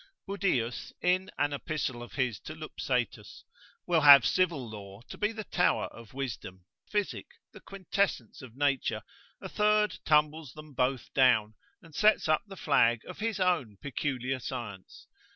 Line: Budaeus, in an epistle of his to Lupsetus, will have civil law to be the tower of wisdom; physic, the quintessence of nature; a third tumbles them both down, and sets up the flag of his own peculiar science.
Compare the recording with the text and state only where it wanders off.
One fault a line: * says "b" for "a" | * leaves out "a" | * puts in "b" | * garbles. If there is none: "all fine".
all fine